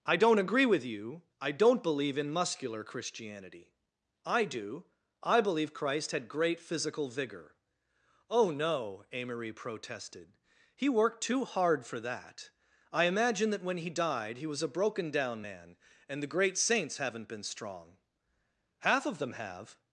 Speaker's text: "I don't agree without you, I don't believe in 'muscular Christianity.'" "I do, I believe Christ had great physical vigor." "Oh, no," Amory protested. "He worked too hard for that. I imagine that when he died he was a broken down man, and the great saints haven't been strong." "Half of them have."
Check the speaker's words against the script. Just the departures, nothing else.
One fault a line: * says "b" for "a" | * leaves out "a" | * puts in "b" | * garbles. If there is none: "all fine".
* says "with" for "without"